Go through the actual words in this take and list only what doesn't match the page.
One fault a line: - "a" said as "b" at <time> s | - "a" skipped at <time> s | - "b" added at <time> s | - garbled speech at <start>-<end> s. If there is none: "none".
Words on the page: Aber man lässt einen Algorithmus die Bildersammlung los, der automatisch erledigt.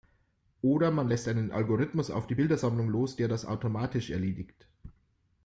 - "Aber" said as "Oder" at 0.6 s
- "auf" added at 2.1 s
- "das" added at 3.3 s